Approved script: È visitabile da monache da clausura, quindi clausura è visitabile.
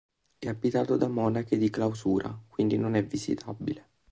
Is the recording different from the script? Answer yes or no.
yes